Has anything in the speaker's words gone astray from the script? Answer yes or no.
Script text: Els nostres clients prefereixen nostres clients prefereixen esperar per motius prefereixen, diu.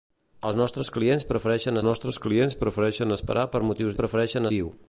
no